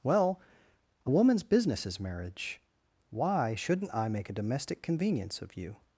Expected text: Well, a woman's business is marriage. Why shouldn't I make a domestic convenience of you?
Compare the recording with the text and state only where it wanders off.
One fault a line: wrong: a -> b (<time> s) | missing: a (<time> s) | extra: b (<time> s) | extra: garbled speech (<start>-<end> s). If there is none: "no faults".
no faults